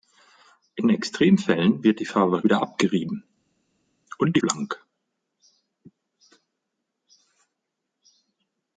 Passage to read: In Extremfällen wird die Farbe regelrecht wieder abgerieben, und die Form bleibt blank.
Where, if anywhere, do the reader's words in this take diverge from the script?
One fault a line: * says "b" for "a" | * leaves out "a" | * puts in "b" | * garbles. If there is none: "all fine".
* leaves out "regelrecht"
* leaves out "Form bleibt"